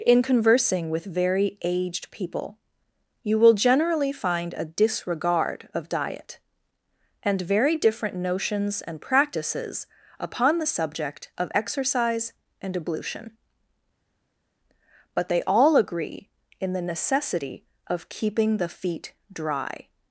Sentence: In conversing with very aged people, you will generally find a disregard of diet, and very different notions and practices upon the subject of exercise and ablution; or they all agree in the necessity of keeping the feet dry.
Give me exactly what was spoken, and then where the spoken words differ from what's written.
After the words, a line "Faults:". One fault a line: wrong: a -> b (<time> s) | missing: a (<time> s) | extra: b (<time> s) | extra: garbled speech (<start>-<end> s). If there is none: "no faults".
In conversing with very aged people, you will generally find a disregard of diet, and very different notions and practices upon the subject of exercise and ablution; but they all agree in the necessity of keeping the feet dry.
Faults:
wrong: or -> but (15.1 s)